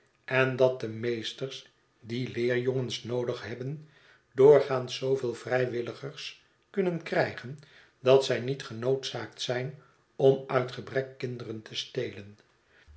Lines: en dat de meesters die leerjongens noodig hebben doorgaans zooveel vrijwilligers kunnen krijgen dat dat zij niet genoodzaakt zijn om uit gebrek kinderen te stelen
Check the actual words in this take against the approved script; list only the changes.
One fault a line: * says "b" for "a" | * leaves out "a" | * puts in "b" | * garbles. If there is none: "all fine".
* leaves out "dat"